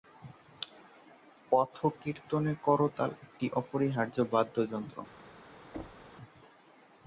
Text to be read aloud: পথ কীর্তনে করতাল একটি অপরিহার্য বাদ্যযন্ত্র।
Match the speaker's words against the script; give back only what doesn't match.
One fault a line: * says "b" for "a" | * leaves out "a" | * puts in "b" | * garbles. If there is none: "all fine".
all fine